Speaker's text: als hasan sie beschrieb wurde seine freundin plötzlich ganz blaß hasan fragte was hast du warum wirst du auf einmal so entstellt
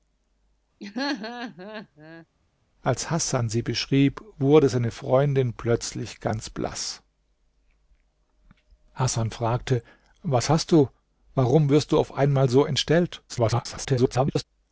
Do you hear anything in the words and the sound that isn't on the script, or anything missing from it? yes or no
yes